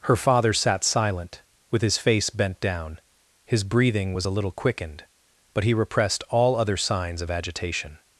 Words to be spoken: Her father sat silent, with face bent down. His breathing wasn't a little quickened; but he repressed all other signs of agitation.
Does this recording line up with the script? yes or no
no